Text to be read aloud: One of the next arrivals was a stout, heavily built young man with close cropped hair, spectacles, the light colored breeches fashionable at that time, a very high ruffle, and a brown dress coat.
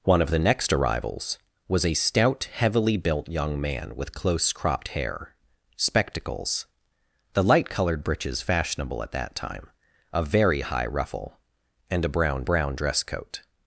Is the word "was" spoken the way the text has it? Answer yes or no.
yes